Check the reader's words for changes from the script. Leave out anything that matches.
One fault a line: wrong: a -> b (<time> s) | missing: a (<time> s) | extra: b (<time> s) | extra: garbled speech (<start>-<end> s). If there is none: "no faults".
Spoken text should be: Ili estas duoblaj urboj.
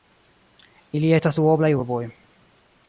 no faults